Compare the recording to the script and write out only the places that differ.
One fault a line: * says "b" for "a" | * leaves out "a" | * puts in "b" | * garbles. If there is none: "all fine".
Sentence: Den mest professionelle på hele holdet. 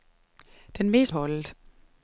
* leaves out "professionelle på hele"